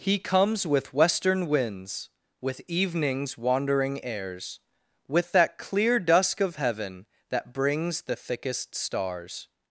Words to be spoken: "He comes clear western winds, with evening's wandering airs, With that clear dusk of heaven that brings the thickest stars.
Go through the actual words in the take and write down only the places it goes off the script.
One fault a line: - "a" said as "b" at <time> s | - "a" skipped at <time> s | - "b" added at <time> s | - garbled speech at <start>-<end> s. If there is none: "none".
- "clear" said as "with" at 0.7 s